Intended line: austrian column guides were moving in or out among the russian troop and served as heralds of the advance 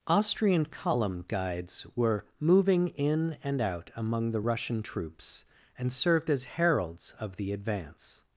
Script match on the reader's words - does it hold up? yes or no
no